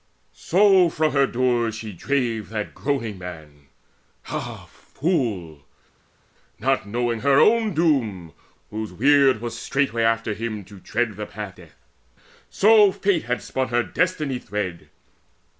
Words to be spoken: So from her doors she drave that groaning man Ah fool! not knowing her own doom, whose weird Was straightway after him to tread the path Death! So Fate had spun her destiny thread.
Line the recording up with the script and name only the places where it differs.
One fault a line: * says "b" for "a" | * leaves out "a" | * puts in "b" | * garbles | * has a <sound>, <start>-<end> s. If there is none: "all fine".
all fine